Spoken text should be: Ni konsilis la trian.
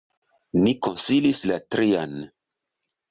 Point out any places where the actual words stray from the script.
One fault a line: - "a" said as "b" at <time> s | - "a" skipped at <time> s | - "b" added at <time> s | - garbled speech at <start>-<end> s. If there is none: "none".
none